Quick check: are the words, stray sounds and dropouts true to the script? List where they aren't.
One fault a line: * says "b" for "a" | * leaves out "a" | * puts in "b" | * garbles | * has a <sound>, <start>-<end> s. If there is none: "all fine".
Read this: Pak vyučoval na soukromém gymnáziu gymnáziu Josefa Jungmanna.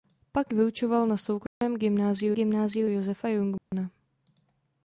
* has a dropout, 1.5-1.6 s
* has a dropout, 3.6-3.7 s